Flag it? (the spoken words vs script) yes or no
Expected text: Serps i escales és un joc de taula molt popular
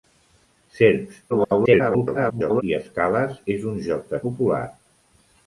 yes